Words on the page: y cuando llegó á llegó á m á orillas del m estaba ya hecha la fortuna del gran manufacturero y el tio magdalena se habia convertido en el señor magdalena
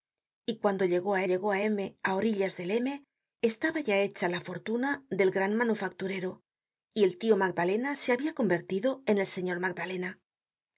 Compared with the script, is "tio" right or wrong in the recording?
right